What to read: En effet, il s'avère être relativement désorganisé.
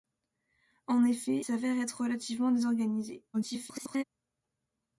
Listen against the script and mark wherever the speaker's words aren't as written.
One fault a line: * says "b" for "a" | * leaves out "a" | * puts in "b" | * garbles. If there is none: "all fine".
* leaves out "il"
* garbles